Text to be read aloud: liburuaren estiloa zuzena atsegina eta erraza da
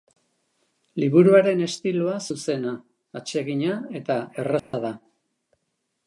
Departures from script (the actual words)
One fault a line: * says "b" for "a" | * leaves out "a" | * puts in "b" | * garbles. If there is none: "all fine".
all fine